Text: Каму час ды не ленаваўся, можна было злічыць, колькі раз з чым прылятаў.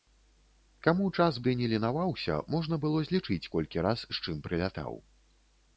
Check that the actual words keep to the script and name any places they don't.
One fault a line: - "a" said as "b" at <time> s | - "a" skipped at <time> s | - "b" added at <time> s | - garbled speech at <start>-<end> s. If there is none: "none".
none